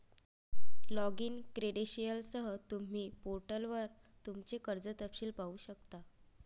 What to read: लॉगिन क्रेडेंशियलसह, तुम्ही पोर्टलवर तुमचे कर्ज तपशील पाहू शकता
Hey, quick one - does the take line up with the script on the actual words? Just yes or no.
yes